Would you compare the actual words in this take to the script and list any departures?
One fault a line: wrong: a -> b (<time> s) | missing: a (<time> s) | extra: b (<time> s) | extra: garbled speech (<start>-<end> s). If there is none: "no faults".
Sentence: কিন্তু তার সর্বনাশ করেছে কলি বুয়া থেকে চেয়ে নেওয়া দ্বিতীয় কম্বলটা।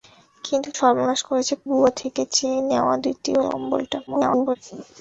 missing: তার (0.7 s)
missing: কলি (1.5 s)
extra: garbled speech (4.1-4.6 s)